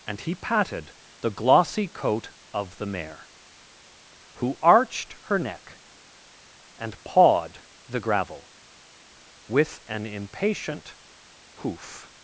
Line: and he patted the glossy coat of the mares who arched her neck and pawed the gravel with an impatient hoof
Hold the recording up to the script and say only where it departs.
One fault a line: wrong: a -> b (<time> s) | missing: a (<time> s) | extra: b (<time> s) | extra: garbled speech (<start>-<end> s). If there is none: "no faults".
wrong: mares -> mare (2.9 s)